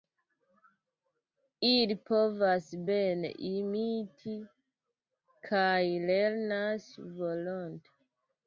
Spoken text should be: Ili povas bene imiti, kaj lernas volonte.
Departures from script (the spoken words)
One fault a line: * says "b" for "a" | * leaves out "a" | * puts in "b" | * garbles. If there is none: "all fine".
all fine